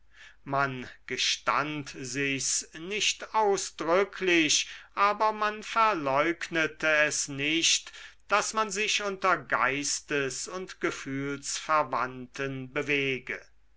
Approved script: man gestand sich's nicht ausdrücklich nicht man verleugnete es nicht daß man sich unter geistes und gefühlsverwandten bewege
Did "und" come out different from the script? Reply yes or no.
no